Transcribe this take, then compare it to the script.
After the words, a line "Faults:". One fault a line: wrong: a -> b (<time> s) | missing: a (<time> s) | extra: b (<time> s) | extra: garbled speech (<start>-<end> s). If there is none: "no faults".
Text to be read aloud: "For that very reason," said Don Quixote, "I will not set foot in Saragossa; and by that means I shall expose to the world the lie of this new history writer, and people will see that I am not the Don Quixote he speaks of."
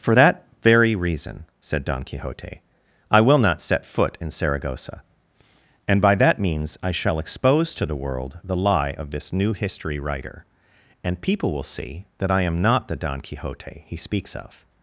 "For that very reason," said Don Quixote, "I will not set foot in Saragossa; and by that means I shall expose to the world the lie of this new history writer, and people will see that I am not the Don Quixote he speaks of."
Faults:
no faults